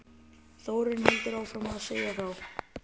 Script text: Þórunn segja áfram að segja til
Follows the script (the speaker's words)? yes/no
no